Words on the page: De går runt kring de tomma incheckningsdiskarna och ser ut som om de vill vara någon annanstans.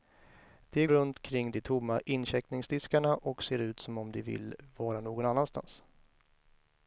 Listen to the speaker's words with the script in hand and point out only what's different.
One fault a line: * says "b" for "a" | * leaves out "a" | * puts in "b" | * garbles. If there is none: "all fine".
* leaves out "går"